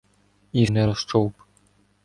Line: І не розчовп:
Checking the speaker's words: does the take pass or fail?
pass